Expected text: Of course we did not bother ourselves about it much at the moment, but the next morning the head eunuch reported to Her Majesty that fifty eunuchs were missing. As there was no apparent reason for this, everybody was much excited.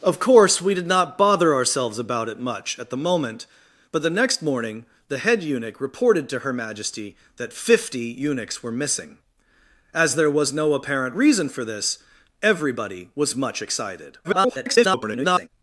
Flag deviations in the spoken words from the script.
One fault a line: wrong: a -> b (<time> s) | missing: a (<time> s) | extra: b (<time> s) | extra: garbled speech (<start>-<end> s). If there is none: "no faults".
extra: garbled speech (14.2-15.5 s)